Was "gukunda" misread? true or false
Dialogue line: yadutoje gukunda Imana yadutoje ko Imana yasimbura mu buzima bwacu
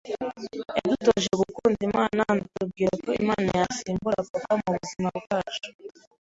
false